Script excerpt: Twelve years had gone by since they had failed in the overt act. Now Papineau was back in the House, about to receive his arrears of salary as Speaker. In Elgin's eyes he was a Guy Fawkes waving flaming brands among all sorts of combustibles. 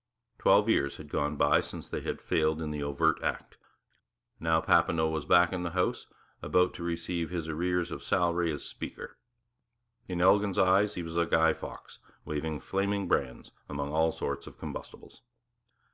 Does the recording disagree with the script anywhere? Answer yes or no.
no